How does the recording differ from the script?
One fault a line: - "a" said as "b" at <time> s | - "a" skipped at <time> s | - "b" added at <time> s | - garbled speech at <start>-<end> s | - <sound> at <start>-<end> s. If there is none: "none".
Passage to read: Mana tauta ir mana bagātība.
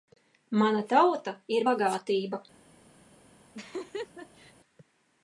- "mana" skipped at 1.7 s
- laugh at 3.5-4.5 s